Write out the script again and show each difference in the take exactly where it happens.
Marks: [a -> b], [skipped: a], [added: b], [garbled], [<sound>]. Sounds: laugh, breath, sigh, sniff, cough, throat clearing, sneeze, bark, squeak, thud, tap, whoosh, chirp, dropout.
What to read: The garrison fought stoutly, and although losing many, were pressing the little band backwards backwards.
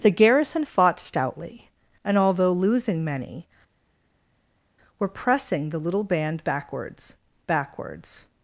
The garrison fought stoutly, and although losing many, were pressing the little band backwards backwards.